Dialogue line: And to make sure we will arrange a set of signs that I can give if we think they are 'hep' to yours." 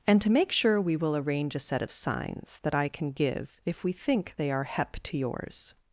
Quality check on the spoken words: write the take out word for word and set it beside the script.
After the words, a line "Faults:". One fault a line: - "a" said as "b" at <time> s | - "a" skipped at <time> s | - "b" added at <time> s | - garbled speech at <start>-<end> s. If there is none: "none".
And to make sure we will arrange a set of signs that I can give if we think they are 'hep' to yours."
Faults:
none